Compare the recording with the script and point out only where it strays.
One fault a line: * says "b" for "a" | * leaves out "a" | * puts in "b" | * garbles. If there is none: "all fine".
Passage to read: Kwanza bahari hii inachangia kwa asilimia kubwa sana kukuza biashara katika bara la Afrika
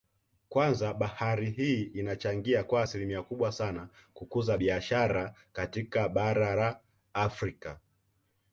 all fine